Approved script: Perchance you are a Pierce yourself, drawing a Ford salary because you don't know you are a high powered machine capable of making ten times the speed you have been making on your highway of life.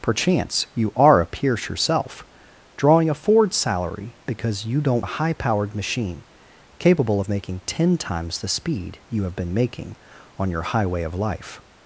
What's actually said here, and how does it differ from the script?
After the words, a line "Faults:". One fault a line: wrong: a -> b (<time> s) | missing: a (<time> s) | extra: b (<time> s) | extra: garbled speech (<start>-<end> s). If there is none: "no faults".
Perchance you are a Pierce yourself, drawing a Ford salary because you don't a high powered machine capable of making ten times the speed you have been making on your highway of life.
Faults:
missing: know you are (5.0 s)